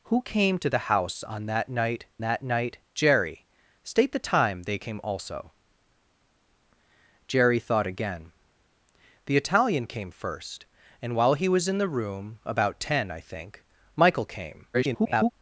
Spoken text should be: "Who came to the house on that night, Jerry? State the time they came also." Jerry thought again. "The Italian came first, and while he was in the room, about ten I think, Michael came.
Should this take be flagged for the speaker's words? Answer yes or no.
yes